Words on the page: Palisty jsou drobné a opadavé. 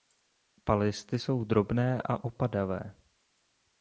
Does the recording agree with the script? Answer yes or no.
yes